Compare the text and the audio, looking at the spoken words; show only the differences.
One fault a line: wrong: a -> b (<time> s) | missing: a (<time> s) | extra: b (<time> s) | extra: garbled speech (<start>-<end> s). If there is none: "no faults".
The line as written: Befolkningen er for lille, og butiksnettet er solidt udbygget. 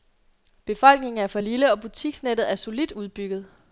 no faults